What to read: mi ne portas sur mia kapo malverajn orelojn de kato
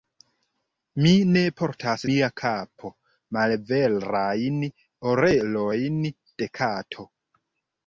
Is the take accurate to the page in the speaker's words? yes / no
no